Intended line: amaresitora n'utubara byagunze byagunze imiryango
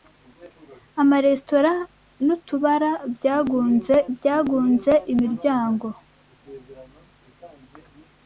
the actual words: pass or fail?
pass